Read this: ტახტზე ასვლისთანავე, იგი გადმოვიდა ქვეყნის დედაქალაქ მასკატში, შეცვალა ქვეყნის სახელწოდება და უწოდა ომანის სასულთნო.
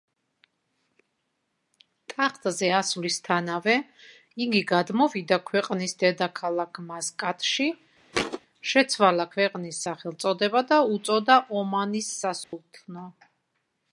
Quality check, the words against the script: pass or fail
pass